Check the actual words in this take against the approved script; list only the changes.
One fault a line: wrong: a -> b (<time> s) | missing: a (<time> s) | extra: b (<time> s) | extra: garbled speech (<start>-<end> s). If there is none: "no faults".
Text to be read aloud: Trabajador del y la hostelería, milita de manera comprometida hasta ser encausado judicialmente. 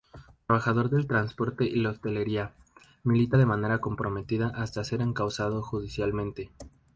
extra: transporte (1.1 s)